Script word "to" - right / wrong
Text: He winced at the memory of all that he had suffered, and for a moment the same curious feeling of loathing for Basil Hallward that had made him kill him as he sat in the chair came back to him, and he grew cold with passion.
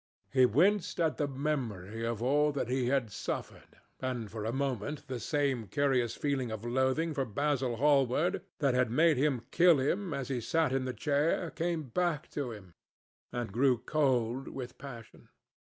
right